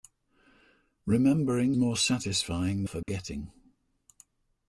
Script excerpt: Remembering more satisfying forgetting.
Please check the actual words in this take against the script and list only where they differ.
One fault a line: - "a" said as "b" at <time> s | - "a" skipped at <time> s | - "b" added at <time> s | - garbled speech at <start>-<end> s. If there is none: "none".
none